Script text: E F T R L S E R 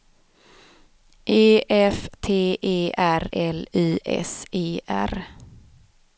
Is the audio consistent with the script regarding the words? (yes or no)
no